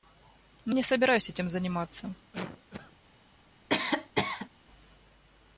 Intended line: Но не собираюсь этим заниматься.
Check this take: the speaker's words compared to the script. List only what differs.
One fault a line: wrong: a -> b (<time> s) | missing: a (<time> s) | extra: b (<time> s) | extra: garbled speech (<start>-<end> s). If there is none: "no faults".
no faults